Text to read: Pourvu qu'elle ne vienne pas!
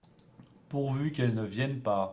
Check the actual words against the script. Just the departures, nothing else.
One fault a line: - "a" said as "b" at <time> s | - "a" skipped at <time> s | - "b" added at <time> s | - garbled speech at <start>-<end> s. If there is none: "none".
none